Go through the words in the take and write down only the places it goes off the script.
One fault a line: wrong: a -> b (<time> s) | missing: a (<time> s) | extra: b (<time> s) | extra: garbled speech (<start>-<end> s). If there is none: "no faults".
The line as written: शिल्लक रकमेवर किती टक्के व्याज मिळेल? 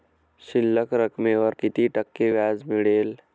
no faults